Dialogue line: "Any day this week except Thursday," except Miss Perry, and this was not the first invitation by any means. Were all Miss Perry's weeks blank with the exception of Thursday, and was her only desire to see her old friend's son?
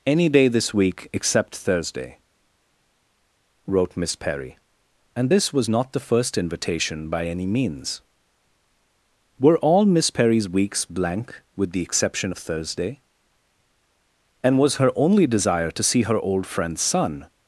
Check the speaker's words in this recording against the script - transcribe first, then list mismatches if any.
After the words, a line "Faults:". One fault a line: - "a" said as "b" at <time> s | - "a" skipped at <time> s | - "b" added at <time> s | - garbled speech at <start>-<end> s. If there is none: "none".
"Any day this week except Thursday," wrote Miss Perry, and this was not the first invitation by any means. Were all Miss Perry's weeks blank with the exception of Thursday, and was her only desire to see her old friend's son?
Faults:
- "except" said as "wrote" at 3.7 s